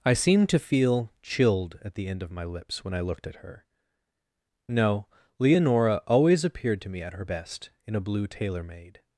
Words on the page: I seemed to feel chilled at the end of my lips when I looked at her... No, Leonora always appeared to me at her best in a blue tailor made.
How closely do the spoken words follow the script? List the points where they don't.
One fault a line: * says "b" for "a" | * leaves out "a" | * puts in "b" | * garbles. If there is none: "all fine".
all fine